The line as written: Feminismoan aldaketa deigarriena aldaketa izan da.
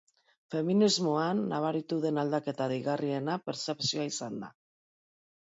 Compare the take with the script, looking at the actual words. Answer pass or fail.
fail